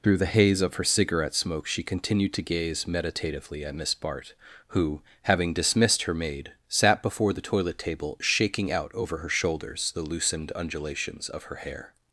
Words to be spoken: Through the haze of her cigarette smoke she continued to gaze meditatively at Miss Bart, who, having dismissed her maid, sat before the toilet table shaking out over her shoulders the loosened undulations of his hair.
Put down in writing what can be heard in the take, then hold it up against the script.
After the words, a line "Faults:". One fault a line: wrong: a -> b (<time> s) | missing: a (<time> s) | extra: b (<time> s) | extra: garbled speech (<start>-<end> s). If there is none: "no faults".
Through the haze of her cigarette smoke she continued to gaze meditatively at Miss Bart, who, having dismissed her maid, sat before the toilet table shaking out over her shoulders the loosened undulations of her hair.
Faults:
wrong: his -> her (11.4 s)